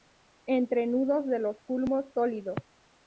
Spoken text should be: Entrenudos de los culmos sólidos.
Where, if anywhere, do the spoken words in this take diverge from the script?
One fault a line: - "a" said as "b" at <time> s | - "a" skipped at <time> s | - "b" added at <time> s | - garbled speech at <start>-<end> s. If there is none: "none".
none